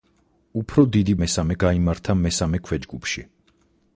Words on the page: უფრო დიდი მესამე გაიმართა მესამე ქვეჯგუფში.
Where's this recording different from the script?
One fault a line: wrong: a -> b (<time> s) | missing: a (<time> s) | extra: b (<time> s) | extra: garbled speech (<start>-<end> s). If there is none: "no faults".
no faults